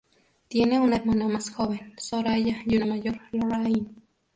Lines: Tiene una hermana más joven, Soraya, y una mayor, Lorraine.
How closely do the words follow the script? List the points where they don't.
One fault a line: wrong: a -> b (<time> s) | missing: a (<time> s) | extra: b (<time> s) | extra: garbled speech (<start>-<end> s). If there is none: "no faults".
no faults